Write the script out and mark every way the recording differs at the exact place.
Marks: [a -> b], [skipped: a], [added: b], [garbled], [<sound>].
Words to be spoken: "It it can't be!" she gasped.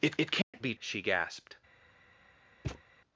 "It it can't [dropout] be!" she gasped. [thud]